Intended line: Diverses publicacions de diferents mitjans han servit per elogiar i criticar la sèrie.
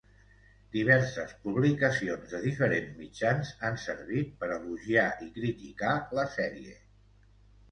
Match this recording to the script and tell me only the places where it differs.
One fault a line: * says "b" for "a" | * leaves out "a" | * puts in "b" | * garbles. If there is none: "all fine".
all fine